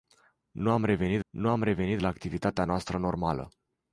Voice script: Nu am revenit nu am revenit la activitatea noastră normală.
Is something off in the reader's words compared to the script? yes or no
no